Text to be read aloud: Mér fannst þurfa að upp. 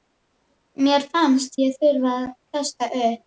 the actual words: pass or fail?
fail